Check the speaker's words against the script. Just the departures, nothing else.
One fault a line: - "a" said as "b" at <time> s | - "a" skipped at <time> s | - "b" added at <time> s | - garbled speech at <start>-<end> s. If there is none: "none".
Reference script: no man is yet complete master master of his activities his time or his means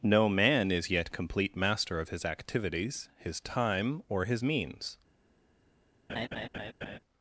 - "master" skipped at 2.0 s